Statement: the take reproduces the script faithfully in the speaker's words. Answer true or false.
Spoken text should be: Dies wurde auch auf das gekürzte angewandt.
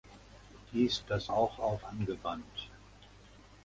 false